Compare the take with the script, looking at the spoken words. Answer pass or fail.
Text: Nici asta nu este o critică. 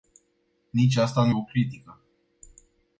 fail